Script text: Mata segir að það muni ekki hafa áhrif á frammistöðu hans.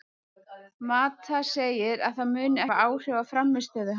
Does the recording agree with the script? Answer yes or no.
no